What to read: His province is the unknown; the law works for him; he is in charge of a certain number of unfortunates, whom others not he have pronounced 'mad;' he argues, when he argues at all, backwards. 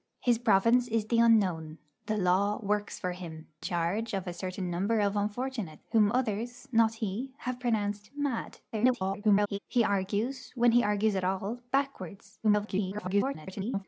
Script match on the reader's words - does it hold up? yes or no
no